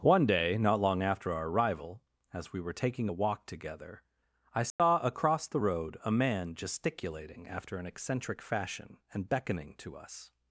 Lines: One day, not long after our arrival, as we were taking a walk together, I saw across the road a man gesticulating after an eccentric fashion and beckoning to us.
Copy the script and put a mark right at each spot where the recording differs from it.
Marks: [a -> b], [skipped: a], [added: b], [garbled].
One day, not long after our arrival, as we were taking a walk together, I saw across the road a man gesticulating after an eccentric fashion and beckoning to us.